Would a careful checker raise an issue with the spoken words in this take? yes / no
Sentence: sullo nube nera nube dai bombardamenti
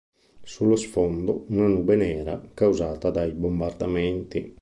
yes